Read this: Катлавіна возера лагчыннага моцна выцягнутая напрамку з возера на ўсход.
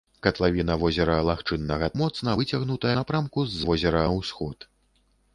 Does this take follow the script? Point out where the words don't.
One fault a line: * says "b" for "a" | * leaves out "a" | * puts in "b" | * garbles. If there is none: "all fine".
all fine